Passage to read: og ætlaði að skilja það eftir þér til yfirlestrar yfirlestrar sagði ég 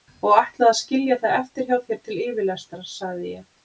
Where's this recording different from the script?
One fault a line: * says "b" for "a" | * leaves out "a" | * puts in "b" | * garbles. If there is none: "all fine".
* puts in "hjá"
* leaves out "yfirlestrar"